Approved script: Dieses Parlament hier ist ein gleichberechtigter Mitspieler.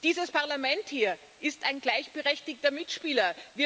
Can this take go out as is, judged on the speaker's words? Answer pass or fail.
pass